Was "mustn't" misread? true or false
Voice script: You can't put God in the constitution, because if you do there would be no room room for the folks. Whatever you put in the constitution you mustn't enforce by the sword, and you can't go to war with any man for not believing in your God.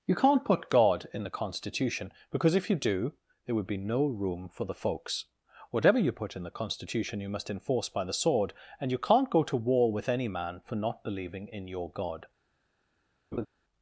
true